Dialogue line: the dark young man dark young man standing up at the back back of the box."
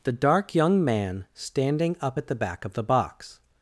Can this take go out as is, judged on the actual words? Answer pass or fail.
fail